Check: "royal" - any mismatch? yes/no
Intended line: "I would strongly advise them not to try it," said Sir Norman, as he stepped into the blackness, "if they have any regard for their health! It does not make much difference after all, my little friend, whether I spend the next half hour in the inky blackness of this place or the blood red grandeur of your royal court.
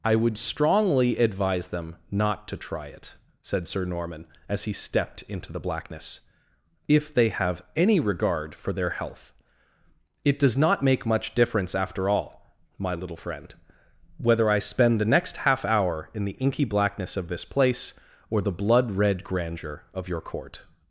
yes